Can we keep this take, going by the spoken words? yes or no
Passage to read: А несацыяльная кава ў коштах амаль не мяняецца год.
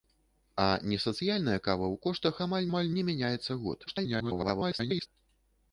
no